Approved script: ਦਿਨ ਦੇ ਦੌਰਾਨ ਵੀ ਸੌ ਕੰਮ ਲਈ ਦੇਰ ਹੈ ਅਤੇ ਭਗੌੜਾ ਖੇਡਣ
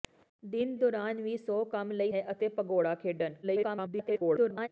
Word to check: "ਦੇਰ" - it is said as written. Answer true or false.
false